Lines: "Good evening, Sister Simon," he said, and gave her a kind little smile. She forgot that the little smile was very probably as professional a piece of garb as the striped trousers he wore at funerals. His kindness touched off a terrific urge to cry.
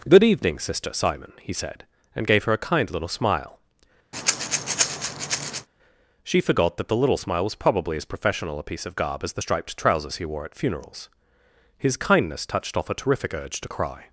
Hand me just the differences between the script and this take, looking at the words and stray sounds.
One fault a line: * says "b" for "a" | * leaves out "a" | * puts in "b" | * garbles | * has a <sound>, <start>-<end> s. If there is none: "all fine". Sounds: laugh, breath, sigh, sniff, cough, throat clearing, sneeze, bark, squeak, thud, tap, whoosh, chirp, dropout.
* has a breath, 4.1-5.7 s
* leaves out "very"